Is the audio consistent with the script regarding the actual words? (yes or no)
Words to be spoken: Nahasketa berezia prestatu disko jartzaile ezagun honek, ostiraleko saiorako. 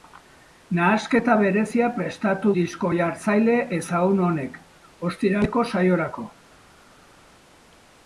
yes